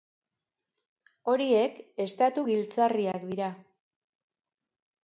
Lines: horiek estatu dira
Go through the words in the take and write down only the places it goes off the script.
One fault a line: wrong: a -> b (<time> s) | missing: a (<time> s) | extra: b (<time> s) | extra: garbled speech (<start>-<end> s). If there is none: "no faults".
extra: giltzarriak (2.5 s)